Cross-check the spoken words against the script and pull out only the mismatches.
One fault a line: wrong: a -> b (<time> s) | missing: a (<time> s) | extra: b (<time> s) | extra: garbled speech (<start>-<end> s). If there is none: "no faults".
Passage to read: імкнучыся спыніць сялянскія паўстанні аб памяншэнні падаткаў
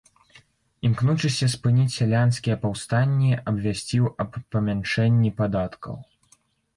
extra: абвясціў (3.5 s)